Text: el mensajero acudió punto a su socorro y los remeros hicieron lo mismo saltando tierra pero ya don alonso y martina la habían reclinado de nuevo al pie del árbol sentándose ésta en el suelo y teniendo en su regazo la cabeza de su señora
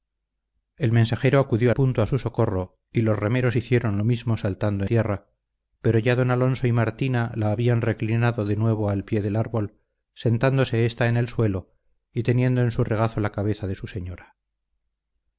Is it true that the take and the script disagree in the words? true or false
false